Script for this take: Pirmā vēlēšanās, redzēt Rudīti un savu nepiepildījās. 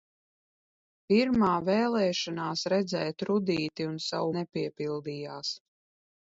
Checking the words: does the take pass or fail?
pass